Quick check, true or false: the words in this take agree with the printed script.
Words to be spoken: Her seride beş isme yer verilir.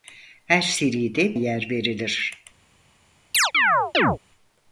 false